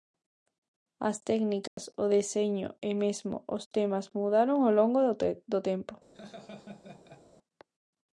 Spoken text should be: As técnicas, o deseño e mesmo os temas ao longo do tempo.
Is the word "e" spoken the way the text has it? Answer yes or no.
yes